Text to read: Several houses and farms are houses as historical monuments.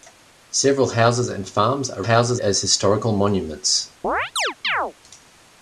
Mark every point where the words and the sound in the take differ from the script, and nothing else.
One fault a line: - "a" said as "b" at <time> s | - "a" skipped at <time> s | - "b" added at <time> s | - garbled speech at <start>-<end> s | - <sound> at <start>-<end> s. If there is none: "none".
- chirp at 4.0-4.9 s